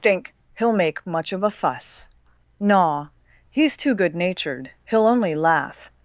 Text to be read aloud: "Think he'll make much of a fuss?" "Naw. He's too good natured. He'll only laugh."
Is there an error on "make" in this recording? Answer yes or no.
no